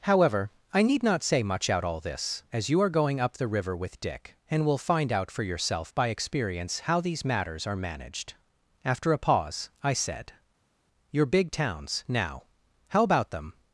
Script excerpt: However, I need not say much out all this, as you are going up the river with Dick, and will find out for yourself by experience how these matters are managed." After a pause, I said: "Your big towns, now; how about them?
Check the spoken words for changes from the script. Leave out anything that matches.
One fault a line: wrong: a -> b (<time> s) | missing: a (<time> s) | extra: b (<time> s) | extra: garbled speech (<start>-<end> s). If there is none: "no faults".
no faults